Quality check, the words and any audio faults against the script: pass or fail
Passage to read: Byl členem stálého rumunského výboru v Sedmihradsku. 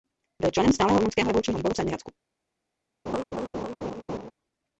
fail